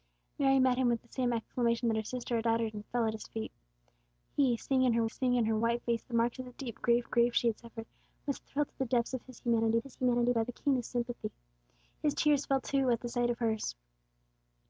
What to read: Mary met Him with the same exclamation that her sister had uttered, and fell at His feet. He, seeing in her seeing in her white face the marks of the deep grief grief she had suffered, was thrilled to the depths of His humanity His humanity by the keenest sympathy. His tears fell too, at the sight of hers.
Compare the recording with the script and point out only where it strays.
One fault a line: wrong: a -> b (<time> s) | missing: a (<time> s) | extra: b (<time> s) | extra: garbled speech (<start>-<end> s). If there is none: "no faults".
no faults